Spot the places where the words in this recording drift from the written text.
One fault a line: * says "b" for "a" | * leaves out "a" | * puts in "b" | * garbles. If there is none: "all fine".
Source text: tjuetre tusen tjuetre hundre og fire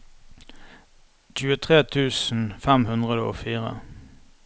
* says "fem" for "tjuetre"